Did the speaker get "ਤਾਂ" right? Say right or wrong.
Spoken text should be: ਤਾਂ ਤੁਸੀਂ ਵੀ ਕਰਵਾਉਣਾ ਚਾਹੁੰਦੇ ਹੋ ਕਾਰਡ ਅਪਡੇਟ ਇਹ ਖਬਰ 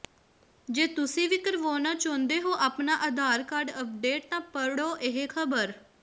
wrong